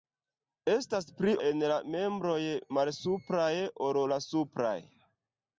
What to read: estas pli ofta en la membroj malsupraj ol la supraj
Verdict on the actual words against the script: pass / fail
fail